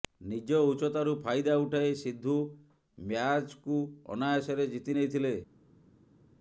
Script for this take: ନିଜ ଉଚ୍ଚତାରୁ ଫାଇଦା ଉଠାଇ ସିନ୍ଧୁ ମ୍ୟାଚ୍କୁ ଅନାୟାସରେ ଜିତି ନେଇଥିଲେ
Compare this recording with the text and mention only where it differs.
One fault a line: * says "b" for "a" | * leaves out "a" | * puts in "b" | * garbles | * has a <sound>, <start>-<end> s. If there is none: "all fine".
all fine